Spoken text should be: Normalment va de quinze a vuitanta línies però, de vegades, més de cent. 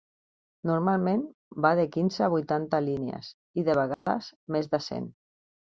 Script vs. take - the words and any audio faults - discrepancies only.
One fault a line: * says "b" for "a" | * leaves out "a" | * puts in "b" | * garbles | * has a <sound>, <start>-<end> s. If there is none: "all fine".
* says "i" for "però"
* has a dropout, 3.9-4.1 s